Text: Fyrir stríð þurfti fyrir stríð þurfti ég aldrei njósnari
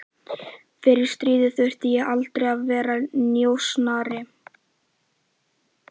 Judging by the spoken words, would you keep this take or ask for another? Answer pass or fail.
fail